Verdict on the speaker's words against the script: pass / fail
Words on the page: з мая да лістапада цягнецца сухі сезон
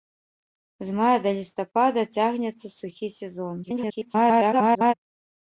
fail